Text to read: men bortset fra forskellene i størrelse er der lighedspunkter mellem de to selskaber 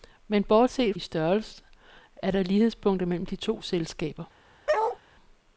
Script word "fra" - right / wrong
wrong